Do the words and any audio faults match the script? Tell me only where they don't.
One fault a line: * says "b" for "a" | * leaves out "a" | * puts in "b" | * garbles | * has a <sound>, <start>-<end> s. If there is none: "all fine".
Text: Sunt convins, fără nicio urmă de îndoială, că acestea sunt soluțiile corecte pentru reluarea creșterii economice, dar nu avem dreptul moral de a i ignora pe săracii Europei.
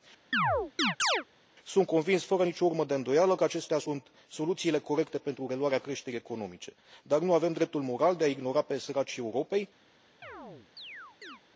* has a chirp, 0.3-1.2 s
* has a chirp, 10.2-11.4 s